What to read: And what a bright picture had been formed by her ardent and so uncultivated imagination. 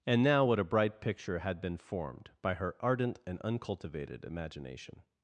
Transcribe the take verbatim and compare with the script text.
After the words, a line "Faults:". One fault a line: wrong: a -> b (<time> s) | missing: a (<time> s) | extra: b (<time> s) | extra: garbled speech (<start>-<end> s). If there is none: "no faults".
And now what a bright picture had been formed by her ardent and uncultivated imagination.
Faults:
extra: now (0.2 s)
missing: so (3.4 s)